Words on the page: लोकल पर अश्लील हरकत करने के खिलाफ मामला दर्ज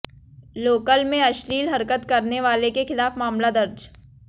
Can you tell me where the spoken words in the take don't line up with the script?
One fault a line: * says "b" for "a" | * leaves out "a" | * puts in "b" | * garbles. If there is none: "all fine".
* says "में" for "पर"
* puts in "वाले"